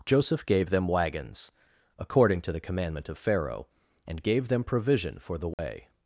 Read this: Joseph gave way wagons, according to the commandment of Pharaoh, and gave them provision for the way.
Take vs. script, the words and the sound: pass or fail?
fail